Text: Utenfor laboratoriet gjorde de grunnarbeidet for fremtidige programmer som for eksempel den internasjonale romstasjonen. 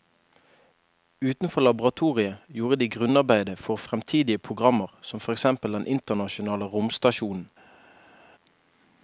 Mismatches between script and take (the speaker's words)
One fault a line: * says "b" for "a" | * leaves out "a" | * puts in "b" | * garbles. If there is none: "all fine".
all fine